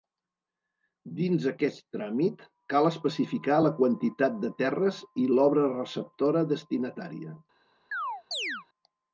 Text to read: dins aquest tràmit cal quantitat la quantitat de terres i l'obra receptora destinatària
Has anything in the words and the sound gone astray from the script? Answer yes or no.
yes